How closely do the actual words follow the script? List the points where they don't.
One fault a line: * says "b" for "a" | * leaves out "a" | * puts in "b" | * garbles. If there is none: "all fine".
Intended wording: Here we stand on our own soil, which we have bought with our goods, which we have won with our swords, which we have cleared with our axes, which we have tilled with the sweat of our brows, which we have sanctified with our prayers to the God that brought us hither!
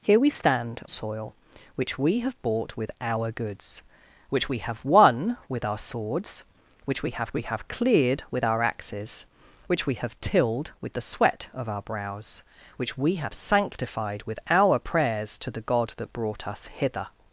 * leaves out "on our own"
* puts in "we have"